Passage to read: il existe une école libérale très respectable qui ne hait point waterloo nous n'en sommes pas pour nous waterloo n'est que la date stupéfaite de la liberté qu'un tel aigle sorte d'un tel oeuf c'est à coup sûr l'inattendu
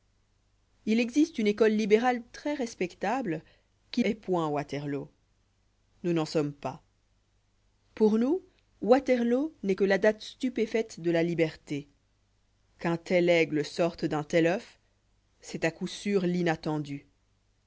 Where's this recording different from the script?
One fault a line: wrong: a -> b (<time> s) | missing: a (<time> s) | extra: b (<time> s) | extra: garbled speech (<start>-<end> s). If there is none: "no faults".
missing: ne (4.0 s)